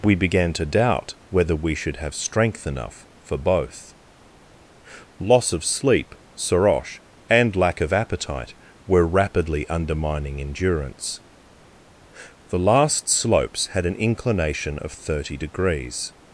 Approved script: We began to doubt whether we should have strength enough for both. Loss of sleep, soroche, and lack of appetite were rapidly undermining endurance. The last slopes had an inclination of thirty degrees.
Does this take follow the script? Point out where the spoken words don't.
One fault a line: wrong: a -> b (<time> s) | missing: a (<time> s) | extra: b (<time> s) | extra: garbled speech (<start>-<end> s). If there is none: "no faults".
no faults